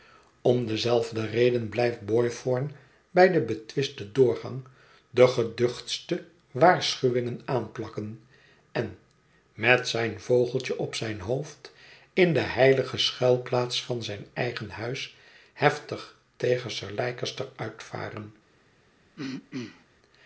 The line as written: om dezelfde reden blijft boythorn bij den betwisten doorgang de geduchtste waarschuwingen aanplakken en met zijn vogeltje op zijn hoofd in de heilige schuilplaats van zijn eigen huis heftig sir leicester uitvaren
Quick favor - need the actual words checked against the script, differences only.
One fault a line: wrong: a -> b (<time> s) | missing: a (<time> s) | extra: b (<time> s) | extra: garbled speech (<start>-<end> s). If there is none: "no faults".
extra: tegen (16.4 s)